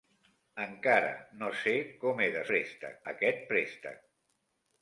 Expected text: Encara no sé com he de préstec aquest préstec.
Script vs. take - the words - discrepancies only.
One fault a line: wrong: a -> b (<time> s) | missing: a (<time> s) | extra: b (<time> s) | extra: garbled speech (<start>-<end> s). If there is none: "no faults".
no faults